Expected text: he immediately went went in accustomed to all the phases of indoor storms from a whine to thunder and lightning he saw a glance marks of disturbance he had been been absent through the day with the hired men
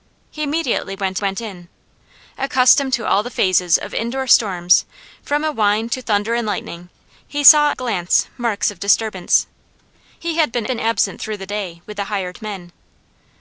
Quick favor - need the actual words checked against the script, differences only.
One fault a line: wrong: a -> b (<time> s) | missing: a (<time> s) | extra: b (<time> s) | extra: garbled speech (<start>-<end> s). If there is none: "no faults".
no faults